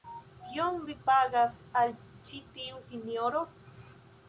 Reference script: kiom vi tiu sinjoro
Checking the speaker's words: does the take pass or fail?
fail